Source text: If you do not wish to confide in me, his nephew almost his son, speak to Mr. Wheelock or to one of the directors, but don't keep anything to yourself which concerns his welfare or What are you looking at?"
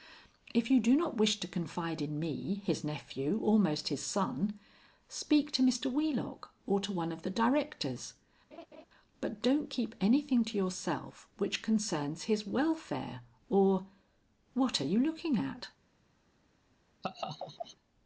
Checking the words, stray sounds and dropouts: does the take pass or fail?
fail